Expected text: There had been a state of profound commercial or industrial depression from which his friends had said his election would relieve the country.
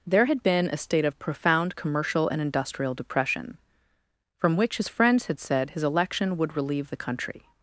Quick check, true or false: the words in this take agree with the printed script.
false